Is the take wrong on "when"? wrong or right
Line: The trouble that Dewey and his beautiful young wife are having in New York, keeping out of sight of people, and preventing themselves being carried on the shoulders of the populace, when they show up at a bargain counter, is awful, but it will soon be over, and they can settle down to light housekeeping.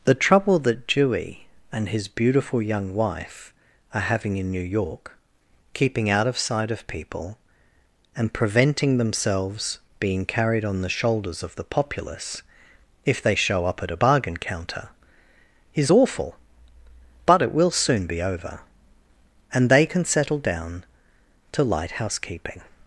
wrong